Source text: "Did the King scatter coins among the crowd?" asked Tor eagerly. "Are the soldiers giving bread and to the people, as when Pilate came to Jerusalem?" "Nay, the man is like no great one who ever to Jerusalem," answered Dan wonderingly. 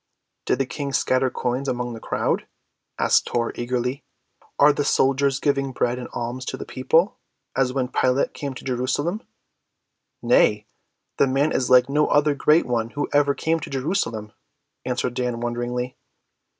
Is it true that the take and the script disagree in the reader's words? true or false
true